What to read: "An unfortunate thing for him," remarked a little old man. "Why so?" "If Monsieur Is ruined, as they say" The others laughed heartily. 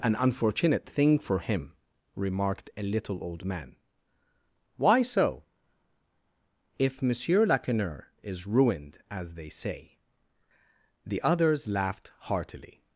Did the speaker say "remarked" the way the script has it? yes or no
yes